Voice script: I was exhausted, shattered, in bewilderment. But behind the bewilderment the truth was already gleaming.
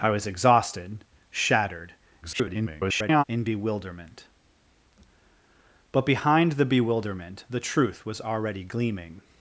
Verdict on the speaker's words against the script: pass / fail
fail